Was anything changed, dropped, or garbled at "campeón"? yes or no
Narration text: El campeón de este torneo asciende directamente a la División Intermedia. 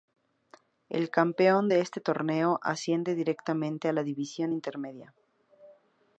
no